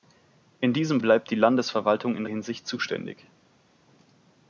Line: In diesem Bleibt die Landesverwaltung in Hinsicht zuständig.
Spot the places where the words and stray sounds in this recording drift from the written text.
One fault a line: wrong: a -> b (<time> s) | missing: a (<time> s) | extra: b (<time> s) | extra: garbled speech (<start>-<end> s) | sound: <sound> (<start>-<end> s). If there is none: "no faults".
no faults